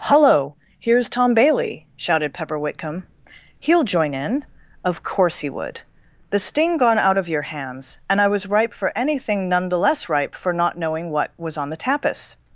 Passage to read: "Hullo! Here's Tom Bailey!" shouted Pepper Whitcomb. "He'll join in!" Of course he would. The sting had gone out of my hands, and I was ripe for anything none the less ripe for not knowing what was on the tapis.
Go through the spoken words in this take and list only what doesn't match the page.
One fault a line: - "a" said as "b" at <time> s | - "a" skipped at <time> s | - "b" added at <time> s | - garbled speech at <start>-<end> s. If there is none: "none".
- "had" skipped at 6.8 s
- "my" said as "your" at 7.3 s